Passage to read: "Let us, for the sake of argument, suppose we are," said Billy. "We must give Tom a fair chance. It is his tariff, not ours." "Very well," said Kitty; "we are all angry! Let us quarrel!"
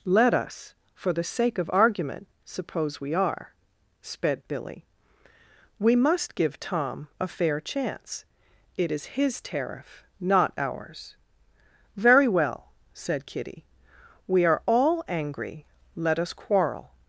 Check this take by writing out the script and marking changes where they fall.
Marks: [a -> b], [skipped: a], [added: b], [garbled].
"Let us, for the sake of argument, suppose we are," [said -> sped] Billy. "We must give Tom a fair chance. It is his tariff, not ours." "Very well," said Kitty; "we are all angry! Let us quarrel!"